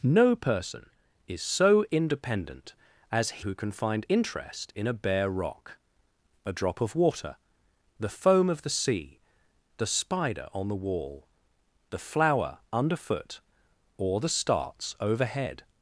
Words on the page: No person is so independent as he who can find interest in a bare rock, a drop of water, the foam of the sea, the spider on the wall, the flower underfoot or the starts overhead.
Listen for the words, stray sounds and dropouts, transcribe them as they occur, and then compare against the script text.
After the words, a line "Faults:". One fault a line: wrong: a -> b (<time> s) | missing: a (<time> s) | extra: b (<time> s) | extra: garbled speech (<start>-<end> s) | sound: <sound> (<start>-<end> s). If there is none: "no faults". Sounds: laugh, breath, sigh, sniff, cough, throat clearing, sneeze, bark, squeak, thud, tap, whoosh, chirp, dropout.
No person is so independent as who can find interest in a bare rock, a drop of water, the foam of the sea, the spider on the wall, the flower underfoot or the starts overhead.
Faults:
missing: he (3.4 s)